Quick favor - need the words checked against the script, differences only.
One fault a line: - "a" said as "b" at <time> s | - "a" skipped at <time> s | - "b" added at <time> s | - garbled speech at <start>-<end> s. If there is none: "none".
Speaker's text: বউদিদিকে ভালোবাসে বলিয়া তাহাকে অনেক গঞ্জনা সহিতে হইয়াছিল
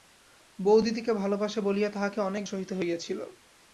- "গঞ্জনা" skipped at 2.4 s